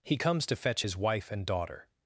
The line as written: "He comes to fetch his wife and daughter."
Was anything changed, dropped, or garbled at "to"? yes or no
no